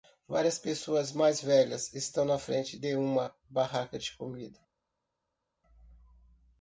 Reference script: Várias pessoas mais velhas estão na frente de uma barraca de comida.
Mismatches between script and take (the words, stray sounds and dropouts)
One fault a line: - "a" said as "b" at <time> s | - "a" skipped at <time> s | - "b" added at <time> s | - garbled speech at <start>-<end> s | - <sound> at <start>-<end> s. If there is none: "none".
none